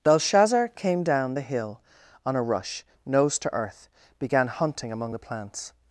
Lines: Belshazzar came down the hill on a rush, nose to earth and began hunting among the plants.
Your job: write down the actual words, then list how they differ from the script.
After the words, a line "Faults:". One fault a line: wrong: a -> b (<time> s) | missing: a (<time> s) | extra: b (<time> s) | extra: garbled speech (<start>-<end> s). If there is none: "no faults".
Belshazzar came down the hill on a rush, nose to earth began hunting among the plants.
Faults:
missing: and (3.9 s)